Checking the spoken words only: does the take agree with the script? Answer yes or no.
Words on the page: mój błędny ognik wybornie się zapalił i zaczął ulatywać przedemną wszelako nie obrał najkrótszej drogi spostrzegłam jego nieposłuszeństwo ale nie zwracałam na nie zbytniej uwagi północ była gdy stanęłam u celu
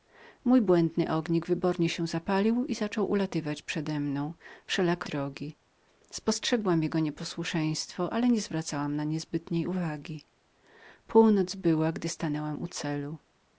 no